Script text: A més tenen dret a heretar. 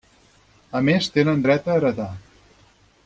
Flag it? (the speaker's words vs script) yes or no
no